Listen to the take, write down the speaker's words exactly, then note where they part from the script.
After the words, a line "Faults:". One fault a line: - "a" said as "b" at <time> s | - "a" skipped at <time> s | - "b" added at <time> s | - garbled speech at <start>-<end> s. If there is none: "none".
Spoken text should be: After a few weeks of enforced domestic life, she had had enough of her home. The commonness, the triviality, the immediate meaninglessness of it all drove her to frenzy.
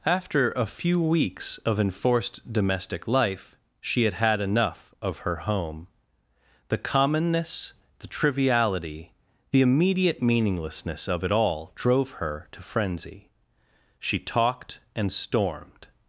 After a few weeks of enforced domestic life, she had had enough of her home. The commonness, the triviality, the immediate meaninglessness of it all drove her to frenzy. She talked and stormed
Faults:
- "She talked and stormed" added at 14.0 s